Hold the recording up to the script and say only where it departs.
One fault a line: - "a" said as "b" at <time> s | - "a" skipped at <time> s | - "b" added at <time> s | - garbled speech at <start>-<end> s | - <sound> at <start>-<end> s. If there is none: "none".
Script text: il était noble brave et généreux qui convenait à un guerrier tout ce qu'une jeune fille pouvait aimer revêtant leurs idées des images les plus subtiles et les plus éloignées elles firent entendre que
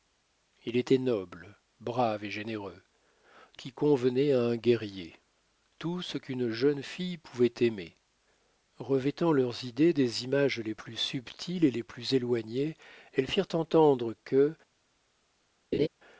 - laugh at 15.7-15.9 s